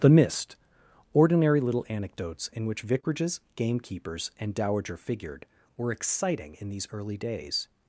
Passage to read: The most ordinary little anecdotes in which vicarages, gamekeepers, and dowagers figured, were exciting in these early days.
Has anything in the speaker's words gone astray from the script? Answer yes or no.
yes